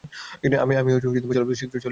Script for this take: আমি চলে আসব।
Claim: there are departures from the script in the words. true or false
false